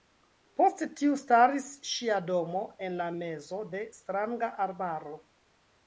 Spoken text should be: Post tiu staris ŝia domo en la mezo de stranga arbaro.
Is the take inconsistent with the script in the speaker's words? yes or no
no